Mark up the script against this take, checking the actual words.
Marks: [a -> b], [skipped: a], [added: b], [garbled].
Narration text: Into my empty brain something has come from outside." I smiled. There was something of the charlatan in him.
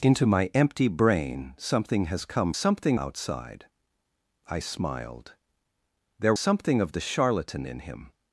Into my empty brain something has come [from -> something] outside." I smiled. There [skipped: was] something of the charlatan in him.